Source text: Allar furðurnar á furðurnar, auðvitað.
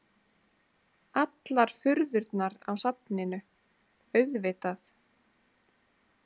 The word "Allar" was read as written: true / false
true